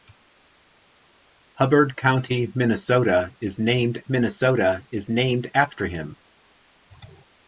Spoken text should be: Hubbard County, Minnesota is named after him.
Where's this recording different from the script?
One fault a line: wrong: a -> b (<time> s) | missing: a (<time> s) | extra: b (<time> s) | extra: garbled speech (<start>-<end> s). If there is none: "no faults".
extra: Minnesota is named (4.1 s)